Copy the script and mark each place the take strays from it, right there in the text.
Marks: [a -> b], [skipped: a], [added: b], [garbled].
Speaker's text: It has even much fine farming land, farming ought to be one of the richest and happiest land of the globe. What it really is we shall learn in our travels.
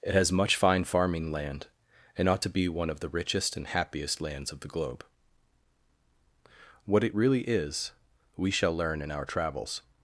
It has [skipped: even] much fine farming land, [farming -> and] ought to be one of the richest and happiest [land -> lands] of the globe. What it really is we shall learn in our travels.